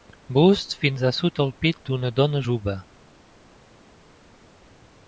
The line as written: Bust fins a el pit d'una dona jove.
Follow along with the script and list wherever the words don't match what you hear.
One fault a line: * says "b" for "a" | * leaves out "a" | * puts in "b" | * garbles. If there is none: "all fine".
* puts in "sota"